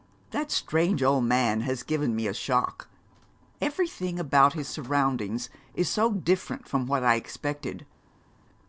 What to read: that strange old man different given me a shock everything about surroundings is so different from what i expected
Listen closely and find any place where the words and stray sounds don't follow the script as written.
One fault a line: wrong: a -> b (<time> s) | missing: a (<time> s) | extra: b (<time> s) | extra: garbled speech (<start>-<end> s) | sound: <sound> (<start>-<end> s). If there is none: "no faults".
wrong: different -> has (1.6 s)
extra: his (4.5 s)